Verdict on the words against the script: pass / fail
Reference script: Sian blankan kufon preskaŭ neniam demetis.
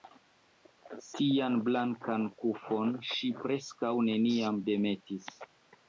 fail